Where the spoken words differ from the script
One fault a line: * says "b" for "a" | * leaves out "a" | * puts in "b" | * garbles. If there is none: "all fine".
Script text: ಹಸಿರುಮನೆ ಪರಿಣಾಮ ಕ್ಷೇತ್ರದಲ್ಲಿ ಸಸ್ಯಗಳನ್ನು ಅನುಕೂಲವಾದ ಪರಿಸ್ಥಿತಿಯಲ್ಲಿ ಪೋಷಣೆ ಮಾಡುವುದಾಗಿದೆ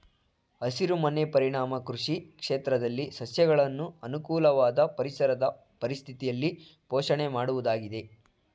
* puts in "ಕೃಷಿ"
* puts in "ಪರಿಸರದ"